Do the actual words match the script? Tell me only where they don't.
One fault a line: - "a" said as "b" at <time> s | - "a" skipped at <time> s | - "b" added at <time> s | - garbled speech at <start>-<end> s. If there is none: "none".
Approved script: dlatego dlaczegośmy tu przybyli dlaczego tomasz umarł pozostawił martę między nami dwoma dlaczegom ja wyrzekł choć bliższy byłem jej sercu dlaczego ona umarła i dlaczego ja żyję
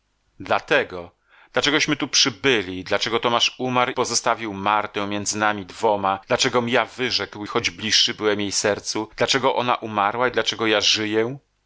none